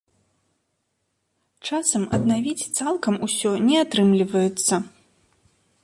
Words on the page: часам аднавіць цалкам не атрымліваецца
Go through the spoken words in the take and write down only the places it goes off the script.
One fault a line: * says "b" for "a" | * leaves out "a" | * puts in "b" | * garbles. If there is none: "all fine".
* puts in "усё"